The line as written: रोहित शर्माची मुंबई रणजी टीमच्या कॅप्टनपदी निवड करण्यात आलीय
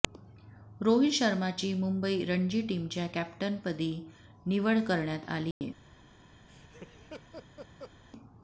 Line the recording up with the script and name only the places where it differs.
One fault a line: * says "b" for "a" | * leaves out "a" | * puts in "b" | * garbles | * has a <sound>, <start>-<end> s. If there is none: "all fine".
* has a dropout, 5.5-5.6 s
* has a laugh, 6.5-7.9 s